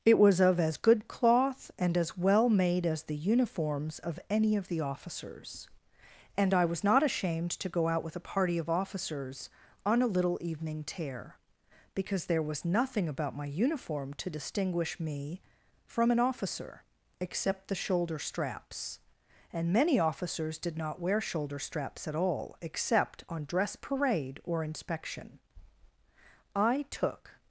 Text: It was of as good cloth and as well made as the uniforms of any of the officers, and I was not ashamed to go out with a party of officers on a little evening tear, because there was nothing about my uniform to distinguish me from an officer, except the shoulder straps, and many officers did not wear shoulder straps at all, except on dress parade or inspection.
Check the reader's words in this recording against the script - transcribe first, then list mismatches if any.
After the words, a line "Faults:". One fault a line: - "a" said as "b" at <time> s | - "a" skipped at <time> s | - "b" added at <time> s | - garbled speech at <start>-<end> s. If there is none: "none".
It was of as good cloth and as well made as the uniforms of any of the officers, and I was not ashamed to go out with a party of officers on a little evening tear, because there was nothing about my uniform to distinguish me from an officer, except the shoulder straps, and many officers did not wear shoulder straps at all, except on dress parade or inspection. I took
Faults:
- "I took" added at 26.6 s